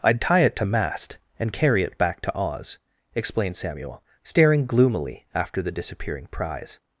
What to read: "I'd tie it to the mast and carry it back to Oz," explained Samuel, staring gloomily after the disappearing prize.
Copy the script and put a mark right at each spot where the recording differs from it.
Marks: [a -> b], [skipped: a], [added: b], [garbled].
"I'd tie it to [skipped: the] mast and carry it back to Oz," explained Samuel, staring gloomily after the disappearing prize.